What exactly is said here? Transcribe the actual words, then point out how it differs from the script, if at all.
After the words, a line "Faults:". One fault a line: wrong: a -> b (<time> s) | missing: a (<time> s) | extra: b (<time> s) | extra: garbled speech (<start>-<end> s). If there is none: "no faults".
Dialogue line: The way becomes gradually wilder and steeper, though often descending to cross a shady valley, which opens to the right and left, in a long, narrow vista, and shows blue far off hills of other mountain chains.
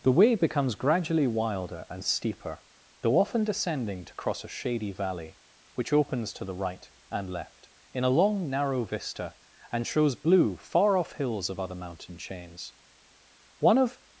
The way becomes gradually wilder and steeper, though often descending to cross a shady valley, which opens to the right and left, in a long, narrow vista, and shows blue far off hills of other mountain chains. One of
Faults:
extra: One of (13.6 s)